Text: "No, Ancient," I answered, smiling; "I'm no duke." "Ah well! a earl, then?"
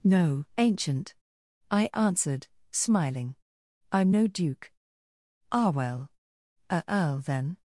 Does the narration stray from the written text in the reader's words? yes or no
no